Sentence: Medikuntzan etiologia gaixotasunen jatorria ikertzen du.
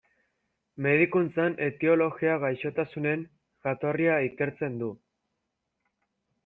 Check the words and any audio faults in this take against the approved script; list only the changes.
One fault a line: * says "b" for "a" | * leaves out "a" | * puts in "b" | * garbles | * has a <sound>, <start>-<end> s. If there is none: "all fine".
all fine